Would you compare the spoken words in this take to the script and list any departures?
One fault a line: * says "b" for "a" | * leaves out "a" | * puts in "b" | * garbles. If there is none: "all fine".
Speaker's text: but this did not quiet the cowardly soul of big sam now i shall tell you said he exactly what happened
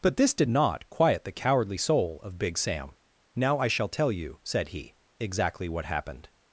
all fine